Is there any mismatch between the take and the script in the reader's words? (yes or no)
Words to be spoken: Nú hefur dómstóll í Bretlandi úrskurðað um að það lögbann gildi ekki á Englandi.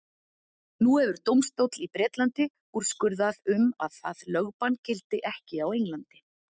no